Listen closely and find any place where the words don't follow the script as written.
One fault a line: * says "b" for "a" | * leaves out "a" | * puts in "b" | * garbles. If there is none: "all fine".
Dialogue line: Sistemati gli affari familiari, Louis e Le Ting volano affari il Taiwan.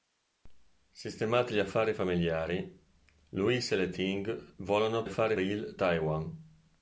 all fine